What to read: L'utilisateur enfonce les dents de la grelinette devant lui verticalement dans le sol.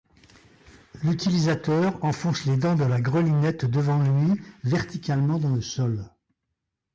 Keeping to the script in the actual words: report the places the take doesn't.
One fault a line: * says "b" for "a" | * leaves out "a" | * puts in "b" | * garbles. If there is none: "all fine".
all fine